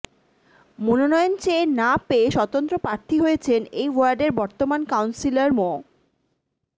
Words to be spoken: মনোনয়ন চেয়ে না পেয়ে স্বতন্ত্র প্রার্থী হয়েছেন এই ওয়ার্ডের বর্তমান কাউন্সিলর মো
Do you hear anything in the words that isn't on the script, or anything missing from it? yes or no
no